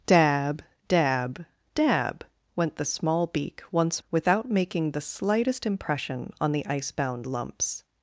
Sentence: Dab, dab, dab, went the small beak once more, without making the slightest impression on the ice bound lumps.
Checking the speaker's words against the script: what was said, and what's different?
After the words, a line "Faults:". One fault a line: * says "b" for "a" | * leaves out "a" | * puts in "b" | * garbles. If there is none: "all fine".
Dab, dab, dab, went the small beak once without making the slightest impression on the ice bound lumps.
Faults:
* leaves out "more"